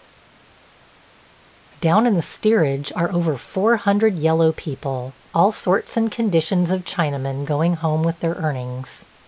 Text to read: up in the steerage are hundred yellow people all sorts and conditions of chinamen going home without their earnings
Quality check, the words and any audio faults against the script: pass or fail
fail